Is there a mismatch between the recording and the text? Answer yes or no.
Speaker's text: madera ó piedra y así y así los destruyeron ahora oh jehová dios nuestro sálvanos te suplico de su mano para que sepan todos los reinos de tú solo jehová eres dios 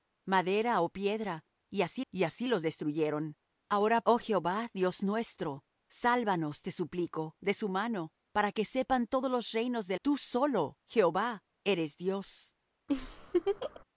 no